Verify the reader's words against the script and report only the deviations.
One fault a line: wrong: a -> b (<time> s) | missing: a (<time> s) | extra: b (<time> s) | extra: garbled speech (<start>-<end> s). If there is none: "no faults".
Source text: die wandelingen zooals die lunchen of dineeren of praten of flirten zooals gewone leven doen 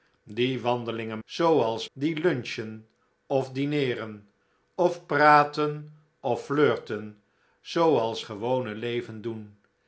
no faults